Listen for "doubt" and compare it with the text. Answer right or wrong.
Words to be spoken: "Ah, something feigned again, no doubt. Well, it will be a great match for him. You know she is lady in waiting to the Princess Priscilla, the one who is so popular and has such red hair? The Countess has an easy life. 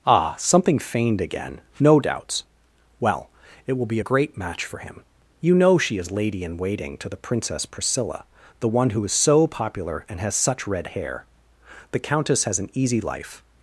wrong